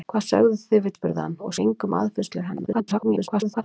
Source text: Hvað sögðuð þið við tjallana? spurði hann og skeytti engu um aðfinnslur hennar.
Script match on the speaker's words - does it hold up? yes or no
no